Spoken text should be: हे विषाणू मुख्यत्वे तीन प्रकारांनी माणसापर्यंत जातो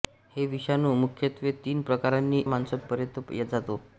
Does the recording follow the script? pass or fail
pass